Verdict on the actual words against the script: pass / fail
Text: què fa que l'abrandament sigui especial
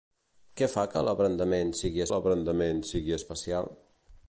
fail